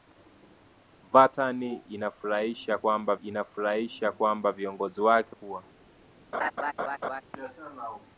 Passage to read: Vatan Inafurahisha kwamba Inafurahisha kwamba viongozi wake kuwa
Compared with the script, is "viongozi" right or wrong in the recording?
right